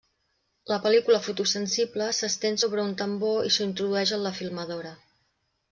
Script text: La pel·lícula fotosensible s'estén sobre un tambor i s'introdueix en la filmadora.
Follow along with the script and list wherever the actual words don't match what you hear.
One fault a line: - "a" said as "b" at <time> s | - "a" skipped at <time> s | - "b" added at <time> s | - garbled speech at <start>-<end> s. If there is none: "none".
none